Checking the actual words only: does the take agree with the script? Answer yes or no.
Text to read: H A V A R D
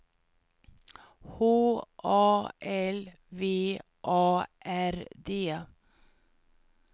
no